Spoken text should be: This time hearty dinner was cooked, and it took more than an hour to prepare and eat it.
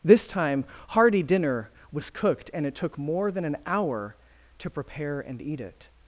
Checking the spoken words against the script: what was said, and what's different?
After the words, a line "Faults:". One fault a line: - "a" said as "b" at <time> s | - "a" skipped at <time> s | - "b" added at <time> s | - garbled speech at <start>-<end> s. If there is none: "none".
This time hearty dinner was cooked, and it took more than an hour to prepare and eat it.
Faults:
none